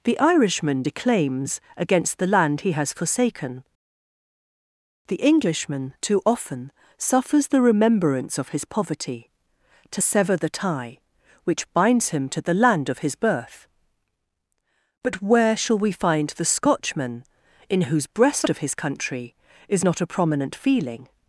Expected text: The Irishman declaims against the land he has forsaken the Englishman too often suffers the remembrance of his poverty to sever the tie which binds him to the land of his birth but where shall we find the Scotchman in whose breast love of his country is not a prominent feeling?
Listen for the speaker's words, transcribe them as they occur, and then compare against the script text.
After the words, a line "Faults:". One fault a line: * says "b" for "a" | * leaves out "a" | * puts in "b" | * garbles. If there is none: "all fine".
The Irishman declaims against the land he has forsaken the Englishman too often suffers the remembrance of his poverty to sever the tie which binds him to the land of his birth but where shall we find the Scotchman in whose breast of his country is not a prominent feeling?
Faults:
* leaves out "love"